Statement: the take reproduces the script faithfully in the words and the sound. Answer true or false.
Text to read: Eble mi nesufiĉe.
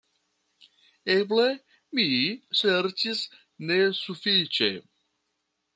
false